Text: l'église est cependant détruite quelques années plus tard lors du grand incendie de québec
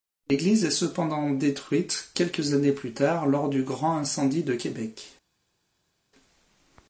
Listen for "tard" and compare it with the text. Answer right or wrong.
right